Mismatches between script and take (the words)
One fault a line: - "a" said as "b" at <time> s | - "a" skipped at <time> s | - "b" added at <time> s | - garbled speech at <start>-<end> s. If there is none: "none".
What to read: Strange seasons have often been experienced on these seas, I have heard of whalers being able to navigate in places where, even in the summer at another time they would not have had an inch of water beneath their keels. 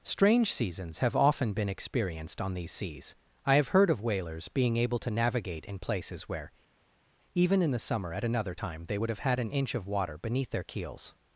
- "not" skipped at 9.1 s